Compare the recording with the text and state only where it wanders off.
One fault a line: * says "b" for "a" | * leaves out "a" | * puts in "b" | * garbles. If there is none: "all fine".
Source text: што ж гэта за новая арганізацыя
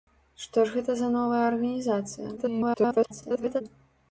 * garbles